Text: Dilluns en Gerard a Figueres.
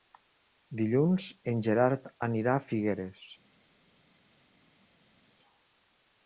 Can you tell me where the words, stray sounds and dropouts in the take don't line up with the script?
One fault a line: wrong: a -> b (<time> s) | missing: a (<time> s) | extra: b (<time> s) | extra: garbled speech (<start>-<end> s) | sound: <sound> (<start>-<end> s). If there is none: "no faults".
extra: anirà (2.3 s)